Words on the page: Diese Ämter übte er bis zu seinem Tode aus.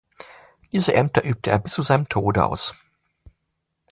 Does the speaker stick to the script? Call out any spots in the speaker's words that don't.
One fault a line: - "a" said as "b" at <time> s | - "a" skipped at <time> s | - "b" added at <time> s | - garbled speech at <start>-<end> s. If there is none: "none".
none